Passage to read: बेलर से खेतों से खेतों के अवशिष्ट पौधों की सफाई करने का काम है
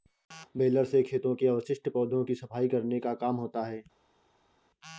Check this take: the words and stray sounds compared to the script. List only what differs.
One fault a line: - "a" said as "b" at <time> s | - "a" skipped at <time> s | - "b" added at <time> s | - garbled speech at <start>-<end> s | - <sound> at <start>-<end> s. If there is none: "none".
- "से खेतों" skipped at 1.3 s
- "होता" added at 3.4 s